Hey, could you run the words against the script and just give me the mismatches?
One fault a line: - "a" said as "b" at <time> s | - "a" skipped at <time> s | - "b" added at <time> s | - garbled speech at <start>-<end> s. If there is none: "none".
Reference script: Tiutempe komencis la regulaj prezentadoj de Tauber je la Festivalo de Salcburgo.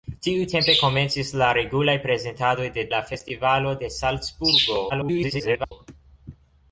- "Tauber je" skipped at 2.9 s
- garbled speech at 4.9-5.7 s